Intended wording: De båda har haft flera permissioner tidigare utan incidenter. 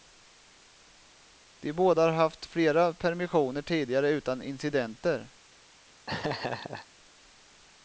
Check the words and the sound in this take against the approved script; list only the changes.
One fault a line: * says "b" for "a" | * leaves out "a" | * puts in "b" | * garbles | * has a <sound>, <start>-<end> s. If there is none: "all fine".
* has a laugh, 6.1-6.9 s